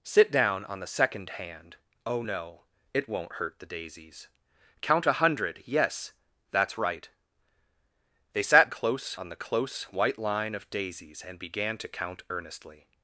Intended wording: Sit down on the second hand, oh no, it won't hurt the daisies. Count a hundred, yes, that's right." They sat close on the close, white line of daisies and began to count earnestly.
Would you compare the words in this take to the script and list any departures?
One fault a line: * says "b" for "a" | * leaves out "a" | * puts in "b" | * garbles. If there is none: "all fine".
all fine